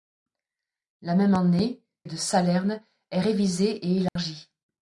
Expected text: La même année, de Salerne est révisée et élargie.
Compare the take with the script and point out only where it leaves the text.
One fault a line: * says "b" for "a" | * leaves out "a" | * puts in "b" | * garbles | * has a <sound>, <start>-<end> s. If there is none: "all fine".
* has a dropout, 4.1-4.2 s